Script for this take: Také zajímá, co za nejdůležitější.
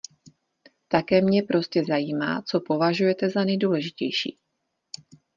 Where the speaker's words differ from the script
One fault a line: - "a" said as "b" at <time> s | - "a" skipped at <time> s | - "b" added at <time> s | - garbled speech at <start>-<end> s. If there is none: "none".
- "mě prostě" added at 1.2 s
- "považujete" added at 2.6 s